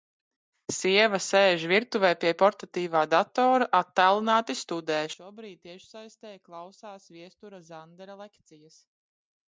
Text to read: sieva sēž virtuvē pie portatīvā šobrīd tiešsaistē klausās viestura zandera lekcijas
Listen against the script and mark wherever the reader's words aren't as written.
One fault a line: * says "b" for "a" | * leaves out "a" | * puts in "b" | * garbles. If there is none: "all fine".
* puts in "datora attālināti studē"